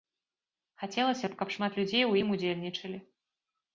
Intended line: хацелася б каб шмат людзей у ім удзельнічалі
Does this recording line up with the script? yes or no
yes